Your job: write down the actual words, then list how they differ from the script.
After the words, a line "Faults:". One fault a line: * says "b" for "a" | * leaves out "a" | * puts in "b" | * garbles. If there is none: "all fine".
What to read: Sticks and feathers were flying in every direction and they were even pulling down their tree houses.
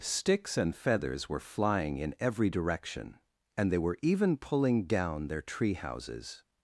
Sticks and feathers were flying in every direction and they were even pulling down their tree houses.
Faults:
all fine